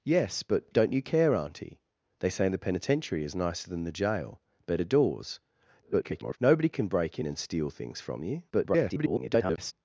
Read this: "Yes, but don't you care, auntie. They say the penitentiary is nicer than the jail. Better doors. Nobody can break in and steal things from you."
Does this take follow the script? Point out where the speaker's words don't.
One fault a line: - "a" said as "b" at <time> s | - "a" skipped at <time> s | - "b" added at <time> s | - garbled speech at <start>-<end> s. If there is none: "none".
- garbled speech at 5.8-6.4 s
- garbled speech at 8.5-9.7 s